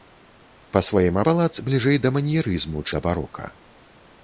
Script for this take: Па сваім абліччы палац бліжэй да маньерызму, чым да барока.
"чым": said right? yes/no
no